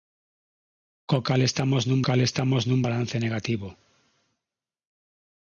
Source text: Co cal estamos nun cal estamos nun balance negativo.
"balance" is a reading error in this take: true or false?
false